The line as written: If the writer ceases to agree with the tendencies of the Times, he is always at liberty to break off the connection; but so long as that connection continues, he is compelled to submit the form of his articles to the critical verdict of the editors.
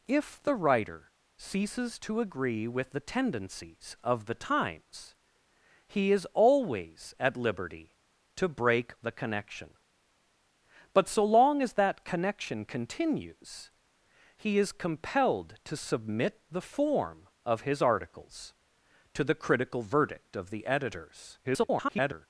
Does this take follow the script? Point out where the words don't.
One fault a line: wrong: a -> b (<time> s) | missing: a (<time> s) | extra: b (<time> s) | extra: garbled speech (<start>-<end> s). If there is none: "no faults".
missing: off (8.9 s)
extra: garbled speech (21.4-22.3 s)